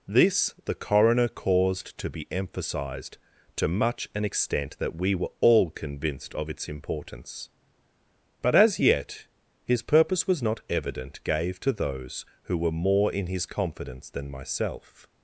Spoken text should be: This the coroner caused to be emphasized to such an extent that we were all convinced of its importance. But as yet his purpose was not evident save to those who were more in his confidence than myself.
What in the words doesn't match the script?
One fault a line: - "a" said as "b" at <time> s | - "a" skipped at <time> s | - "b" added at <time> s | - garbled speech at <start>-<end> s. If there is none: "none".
- "such" said as "much" at 3.7 s
- "save" said as "gave" at 11.2 s